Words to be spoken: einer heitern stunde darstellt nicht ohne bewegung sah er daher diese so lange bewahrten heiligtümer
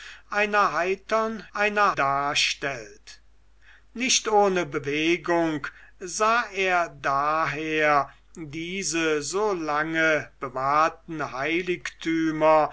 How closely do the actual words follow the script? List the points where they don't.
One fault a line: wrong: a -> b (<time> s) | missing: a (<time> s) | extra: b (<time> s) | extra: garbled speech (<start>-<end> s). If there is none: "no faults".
wrong: stunde -> einer (1.5 s)